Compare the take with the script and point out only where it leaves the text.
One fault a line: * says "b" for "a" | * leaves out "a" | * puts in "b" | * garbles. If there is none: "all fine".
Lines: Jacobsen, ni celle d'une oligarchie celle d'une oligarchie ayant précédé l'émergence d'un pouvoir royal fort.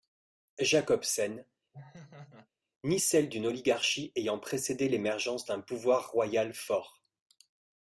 * leaves out "celle d'une oligarchie"